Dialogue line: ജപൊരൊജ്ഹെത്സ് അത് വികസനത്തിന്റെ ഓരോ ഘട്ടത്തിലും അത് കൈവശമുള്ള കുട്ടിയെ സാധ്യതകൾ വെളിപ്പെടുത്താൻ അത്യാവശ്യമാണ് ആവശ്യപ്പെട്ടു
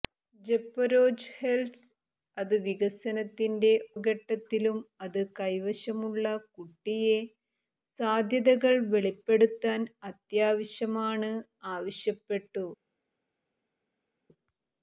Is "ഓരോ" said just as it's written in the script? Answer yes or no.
no